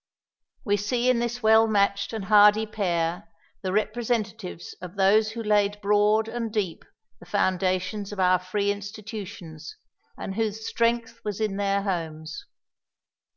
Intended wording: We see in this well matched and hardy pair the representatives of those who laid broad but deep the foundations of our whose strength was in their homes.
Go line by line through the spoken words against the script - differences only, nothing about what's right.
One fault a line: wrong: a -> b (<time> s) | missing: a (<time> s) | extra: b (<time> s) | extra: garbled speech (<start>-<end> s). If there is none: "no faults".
wrong: but -> and (6.3 s)
extra: free institutions and (8.4 s)